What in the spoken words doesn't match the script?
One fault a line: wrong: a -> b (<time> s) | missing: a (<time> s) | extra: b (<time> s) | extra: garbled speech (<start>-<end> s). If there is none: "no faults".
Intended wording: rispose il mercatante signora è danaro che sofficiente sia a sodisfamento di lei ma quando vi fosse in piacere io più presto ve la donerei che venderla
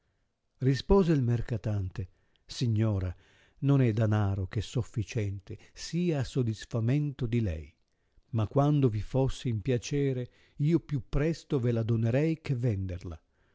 extra: non (3.6 s)